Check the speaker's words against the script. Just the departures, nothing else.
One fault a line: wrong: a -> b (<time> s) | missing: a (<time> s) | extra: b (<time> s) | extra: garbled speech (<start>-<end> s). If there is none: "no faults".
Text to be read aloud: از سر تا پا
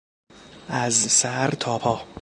no faults